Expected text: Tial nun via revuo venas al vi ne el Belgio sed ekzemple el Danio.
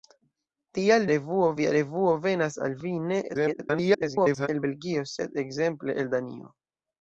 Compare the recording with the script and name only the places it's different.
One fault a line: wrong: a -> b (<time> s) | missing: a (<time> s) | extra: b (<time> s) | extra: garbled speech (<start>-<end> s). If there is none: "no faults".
wrong: nun -> revuo (1.1 s)
extra: garbled speech (3.3-4.5 s)